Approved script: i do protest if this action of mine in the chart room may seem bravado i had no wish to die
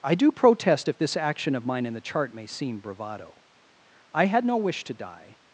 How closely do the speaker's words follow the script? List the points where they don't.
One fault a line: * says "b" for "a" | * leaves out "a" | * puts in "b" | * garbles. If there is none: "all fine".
* leaves out "room"